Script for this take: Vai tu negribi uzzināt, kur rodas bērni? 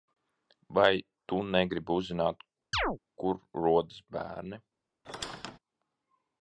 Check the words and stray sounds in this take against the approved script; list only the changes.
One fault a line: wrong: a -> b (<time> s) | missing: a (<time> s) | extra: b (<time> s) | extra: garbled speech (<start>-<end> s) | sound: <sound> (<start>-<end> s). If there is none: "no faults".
sound: chirp (2.7-3.0 s)
sound: squeak (5.0-5.6 s)